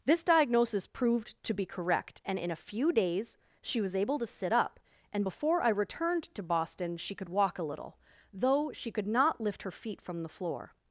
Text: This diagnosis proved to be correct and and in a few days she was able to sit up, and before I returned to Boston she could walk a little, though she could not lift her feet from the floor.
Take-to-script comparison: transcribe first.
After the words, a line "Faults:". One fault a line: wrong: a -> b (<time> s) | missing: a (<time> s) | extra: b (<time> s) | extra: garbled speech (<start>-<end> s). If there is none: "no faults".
This diagnosis proved to be correct and in a few days she was able to sit up, and before I returned to Boston she could walk a little, though she could not lift her feet from the floor.
Faults:
missing: and (2.4 s)